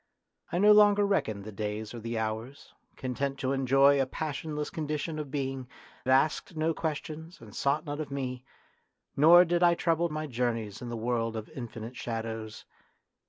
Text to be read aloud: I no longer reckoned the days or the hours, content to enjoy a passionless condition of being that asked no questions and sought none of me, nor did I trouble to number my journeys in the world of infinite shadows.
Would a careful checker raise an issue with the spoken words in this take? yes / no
yes